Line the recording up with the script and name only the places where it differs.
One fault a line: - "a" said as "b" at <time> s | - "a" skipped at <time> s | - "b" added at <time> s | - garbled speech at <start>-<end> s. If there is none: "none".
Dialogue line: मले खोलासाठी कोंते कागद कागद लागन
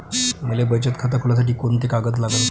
- "बचत खातं" added at 0.6 s
- "कागद" skipped at 2.2 s